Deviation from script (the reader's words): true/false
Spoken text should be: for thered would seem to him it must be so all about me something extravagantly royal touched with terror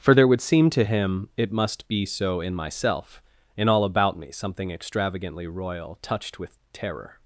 true